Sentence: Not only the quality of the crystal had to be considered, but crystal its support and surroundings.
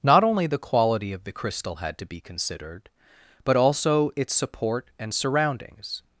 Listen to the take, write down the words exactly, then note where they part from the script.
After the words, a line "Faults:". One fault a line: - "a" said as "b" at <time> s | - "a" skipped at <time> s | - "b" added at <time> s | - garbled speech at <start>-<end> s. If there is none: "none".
Not only the quality of the crystal had to be considered, but also its support and surroundings.
Faults:
- "crystal" said as "also" at 3.5 s